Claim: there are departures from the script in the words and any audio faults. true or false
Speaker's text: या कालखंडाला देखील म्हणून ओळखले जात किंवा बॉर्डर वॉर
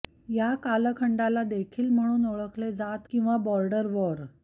false